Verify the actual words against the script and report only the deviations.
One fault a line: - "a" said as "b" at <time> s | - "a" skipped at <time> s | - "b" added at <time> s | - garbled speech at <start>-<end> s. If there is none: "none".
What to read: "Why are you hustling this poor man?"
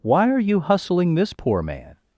none